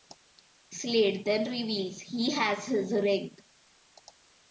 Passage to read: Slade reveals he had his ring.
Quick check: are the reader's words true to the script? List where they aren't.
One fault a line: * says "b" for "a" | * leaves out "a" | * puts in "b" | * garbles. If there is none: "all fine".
* puts in "then"
* says "has" for "had"